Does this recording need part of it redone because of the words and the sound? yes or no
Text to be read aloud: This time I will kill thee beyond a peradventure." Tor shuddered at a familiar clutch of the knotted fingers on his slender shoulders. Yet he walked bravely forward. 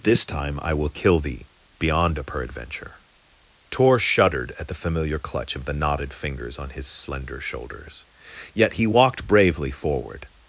yes